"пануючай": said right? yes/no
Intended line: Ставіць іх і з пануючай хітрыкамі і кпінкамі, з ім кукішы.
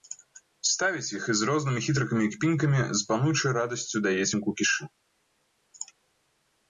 no